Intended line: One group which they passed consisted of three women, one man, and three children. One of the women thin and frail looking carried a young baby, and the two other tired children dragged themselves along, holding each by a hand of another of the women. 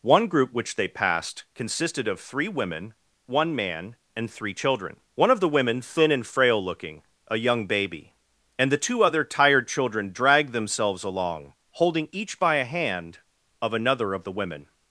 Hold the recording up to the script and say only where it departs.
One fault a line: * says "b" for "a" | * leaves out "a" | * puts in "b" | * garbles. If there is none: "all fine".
* leaves out "carried"